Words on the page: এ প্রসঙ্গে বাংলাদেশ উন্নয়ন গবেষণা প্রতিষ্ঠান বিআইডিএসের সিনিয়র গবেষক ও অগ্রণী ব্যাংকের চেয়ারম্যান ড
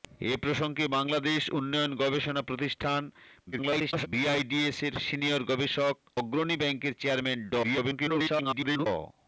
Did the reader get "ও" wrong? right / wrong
wrong